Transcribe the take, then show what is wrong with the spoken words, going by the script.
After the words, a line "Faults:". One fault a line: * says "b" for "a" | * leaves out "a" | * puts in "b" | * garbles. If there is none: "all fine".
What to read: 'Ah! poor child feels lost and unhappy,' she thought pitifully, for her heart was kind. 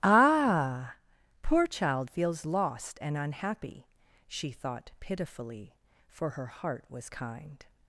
'Ah! poor child feels lost and unhappy,' she thought pitifully, for her heart was kind.
Faults:
all fine